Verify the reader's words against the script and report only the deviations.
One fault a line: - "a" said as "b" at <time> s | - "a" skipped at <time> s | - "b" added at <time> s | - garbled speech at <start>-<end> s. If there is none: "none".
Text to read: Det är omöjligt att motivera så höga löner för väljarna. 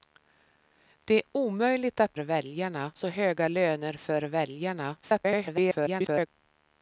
- "motivera" said as "väljarna" at 2.2 s
- garbled speech at 5.0-6.3 s